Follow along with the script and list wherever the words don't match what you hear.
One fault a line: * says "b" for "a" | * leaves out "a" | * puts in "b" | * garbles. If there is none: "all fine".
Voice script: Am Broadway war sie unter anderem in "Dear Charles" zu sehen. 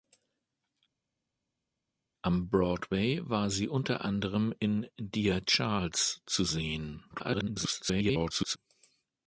* garbles